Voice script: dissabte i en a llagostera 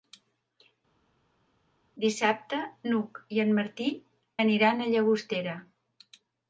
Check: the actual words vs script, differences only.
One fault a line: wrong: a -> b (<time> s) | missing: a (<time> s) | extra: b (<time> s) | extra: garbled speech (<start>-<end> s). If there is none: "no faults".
extra: n'hug (2.9 s)
extra: martí aniran (3.6 s)